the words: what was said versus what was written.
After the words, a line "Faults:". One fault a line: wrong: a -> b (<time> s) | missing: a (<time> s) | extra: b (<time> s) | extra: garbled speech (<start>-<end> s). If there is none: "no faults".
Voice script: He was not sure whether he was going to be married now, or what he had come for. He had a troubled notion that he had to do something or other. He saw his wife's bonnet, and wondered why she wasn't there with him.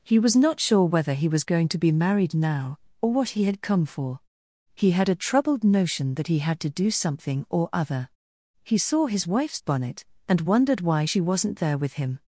He was not sure whether he was going to be married now, or what he had come for. He had a troubled notion that he had to do something or other. He saw his wife's bonnet, and wondered why she wasn't there with him.
Faults:
no faults